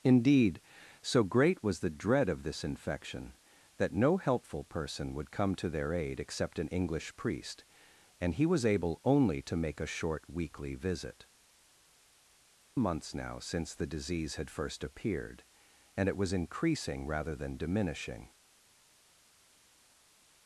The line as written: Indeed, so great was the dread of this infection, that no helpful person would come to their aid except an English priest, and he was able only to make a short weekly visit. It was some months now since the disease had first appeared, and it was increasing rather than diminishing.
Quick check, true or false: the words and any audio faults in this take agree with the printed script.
false